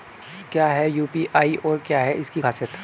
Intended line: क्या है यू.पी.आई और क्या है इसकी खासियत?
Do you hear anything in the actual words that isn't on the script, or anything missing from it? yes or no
no